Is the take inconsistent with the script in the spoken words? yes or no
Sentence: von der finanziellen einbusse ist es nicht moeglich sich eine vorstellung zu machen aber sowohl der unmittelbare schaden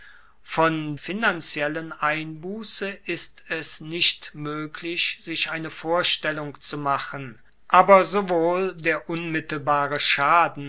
yes